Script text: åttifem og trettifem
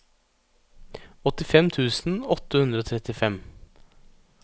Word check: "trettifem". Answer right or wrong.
right